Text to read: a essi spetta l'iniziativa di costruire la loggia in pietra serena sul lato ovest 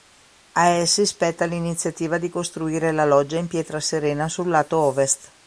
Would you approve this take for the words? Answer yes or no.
yes